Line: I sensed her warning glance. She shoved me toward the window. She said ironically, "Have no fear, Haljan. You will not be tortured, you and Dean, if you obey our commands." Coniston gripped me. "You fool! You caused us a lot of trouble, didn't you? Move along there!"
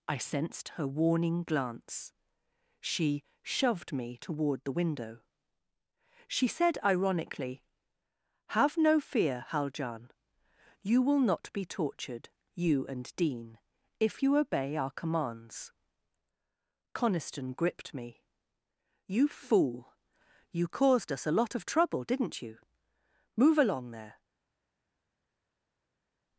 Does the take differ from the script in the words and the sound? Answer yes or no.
no